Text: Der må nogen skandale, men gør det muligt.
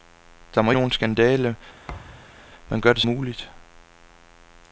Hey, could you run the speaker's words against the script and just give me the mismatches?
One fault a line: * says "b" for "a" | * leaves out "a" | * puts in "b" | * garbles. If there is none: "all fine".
all fine